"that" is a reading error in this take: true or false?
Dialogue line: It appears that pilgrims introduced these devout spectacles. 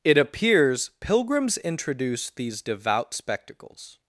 true